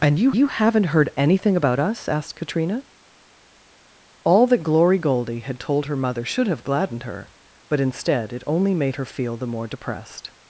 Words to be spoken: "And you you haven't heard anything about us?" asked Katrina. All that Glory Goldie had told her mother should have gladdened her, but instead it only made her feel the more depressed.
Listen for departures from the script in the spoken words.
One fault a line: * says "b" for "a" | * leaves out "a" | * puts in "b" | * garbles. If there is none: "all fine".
all fine